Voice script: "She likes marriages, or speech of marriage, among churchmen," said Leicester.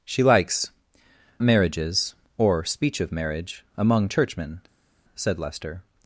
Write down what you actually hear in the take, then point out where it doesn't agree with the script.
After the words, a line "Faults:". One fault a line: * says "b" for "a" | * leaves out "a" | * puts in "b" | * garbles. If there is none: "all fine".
"She likes marriages, or speech of marriage, among churchmen," said Leicester.
Faults:
all fine